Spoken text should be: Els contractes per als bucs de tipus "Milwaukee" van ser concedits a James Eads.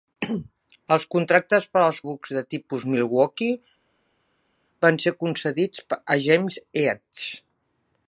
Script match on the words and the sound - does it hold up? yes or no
yes